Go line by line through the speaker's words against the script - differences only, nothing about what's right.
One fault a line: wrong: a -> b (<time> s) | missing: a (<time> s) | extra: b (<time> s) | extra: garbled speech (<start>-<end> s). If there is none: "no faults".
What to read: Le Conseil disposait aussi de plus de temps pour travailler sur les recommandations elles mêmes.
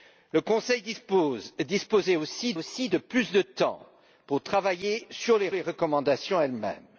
extra: aussi (2.5 s)
extra: les (5.5 s)